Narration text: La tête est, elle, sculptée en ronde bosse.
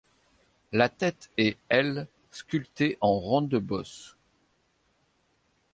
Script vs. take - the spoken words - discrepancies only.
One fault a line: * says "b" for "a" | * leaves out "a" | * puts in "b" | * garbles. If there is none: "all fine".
all fine